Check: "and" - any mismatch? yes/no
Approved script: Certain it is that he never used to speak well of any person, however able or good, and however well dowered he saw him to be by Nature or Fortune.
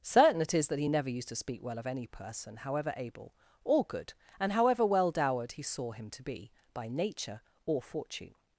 no